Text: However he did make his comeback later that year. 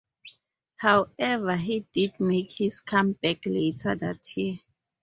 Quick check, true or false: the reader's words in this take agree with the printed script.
true